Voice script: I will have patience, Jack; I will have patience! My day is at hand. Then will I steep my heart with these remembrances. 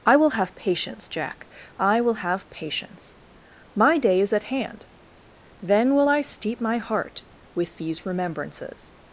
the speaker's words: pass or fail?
pass